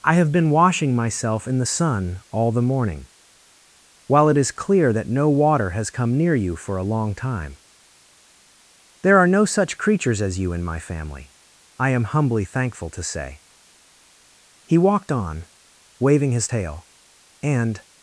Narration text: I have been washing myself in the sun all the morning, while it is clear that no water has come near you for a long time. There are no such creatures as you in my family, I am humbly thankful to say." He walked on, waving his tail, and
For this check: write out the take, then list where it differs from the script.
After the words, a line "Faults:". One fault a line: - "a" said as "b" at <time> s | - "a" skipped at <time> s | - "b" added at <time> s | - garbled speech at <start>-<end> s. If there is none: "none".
I have been washing myself in the sun all the morning, while it is clear that no water has come near you for a long time. There are no such creatures as you in my family, I am humbly thankful to say." He walked on, waving his tail, and
Faults:
none